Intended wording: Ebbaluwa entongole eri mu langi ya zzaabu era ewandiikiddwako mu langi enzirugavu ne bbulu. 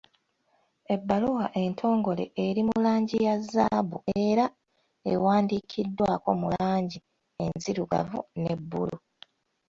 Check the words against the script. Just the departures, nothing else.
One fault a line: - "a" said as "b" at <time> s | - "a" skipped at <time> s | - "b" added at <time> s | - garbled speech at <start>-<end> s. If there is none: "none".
none